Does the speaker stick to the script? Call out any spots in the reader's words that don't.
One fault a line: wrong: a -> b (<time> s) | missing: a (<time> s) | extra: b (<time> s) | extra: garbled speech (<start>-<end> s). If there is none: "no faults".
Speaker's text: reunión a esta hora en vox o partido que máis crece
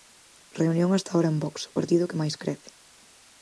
no faults